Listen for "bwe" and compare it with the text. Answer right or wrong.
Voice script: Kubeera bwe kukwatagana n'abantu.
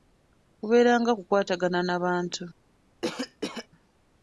wrong